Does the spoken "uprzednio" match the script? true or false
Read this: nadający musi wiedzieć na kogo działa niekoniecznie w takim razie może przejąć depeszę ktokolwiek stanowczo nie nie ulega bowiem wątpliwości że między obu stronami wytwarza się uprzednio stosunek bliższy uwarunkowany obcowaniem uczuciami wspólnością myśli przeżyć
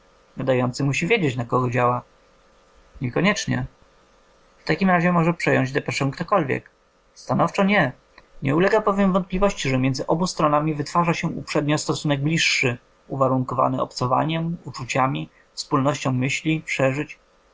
true